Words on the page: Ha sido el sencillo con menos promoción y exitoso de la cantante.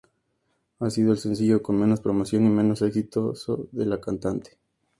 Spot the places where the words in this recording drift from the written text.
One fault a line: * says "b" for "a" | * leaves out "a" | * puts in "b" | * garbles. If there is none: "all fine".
* puts in "menos"